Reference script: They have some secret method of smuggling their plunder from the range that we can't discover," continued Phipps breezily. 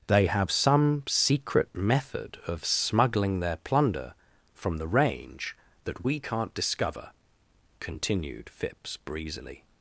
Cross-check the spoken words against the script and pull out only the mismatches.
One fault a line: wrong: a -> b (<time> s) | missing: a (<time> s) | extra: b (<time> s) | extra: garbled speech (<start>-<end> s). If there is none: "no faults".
no faults